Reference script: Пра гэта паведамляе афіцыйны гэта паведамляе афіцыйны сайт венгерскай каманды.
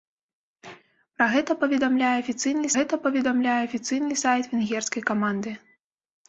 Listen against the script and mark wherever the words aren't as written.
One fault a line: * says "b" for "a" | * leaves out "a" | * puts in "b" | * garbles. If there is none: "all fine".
all fine